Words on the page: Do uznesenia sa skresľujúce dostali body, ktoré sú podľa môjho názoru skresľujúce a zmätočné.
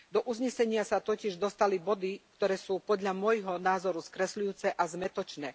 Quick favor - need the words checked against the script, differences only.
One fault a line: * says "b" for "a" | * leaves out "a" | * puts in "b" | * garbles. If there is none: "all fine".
* says "totiž" for "skresľujúce"